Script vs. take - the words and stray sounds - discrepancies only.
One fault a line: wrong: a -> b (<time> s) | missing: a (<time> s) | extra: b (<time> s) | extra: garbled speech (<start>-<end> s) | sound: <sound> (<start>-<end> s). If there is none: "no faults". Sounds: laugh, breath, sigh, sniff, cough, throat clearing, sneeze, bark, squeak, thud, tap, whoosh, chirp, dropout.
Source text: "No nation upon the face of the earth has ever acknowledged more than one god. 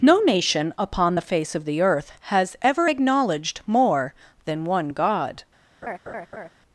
sound: laugh (5.8-6.5 s)